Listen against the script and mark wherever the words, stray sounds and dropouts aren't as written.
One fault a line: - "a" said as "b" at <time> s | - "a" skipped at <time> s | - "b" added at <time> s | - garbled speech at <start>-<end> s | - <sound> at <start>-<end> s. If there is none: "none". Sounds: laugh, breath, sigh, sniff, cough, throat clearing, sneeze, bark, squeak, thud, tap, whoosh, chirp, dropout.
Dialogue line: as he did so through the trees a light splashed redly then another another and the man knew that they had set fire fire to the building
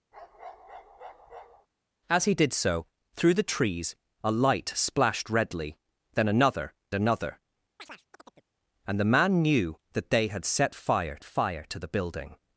- bark at 0.1-1.7 s
- chirp at 7.8-8.5 s